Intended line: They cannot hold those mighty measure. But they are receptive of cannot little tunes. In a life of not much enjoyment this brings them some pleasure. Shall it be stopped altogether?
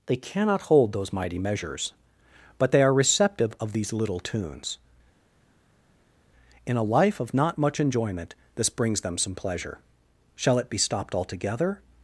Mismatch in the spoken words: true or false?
true